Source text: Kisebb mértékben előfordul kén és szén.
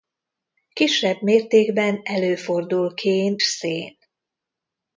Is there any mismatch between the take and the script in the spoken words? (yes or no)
yes